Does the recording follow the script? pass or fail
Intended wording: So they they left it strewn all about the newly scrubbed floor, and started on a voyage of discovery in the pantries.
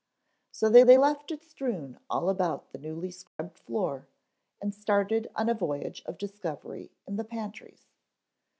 pass